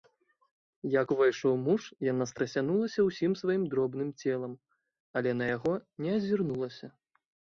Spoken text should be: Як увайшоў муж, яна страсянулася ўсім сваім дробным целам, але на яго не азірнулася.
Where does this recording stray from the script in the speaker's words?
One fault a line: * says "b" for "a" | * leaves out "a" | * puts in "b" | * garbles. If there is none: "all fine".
all fine